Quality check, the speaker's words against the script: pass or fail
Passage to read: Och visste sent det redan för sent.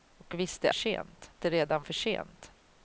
pass